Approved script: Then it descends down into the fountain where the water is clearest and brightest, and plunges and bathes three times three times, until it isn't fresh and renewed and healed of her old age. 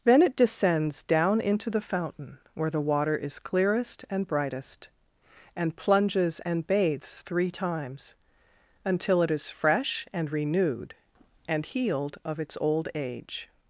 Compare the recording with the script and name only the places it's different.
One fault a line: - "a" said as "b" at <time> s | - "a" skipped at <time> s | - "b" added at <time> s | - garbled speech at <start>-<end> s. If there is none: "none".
- "three times" skipped at 8.1 s
- "isn't" said as "is" at 9.3 s
- "her" said as "its" at 12.4 s